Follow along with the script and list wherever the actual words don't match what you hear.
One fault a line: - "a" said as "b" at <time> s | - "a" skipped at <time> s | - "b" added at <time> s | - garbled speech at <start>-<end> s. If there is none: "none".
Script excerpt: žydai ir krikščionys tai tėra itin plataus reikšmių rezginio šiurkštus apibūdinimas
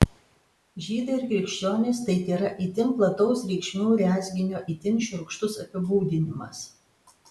- "itin" added at 4.8 s